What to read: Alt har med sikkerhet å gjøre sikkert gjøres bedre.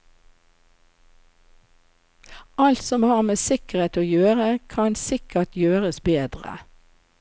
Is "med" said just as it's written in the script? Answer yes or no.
yes